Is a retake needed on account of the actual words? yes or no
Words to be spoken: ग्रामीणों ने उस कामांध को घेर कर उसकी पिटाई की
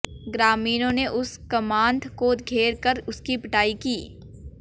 no